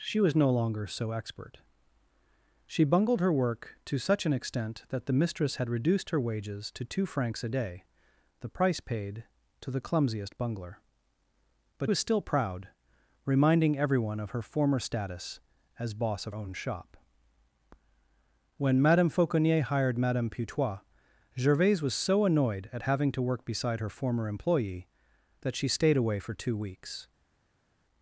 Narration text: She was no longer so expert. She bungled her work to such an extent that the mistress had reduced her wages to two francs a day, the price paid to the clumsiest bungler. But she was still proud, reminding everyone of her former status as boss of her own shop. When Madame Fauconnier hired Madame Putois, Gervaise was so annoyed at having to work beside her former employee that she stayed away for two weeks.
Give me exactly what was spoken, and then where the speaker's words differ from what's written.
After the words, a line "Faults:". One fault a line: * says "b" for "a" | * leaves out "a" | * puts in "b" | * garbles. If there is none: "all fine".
She was no longer so expert. She bungled her work to such an extent that the mistress had reduced her wages to two francs a day, the price paid to the clumsiest bungler. But was still proud, reminding everyone of her former status as boss of own shop. When Madame Fauconnier hired Madame Putois, Gervaise was so annoyed at having to work beside her former employee that she stayed away for two weeks.
Faults:
* leaves out "she"
* leaves out "her"